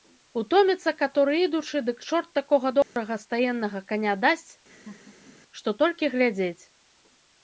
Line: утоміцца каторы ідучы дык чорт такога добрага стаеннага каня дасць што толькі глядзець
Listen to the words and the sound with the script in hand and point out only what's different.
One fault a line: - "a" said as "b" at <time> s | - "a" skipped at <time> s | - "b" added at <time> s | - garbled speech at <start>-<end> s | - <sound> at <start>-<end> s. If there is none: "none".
- dropout at 2.8-3.0 s
- laugh at 4.7-5.4 s